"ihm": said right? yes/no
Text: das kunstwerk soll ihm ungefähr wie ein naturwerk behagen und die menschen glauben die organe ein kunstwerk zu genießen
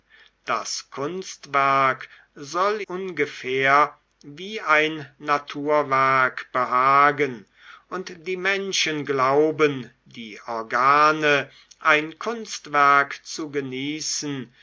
no